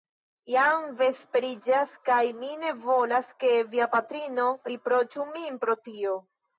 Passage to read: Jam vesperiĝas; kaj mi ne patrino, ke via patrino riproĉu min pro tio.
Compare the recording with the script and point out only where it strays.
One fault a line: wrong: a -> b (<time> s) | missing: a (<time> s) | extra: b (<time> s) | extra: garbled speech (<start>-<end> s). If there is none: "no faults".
wrong: patrino -> volas (2.9 s)